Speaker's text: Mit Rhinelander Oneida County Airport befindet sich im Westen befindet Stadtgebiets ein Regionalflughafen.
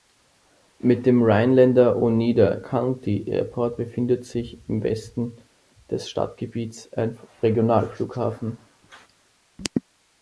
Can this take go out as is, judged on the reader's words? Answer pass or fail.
fail